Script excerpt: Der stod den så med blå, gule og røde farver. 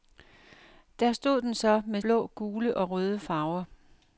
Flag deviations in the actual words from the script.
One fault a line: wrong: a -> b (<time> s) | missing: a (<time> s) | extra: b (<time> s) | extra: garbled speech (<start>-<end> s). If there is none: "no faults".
no faults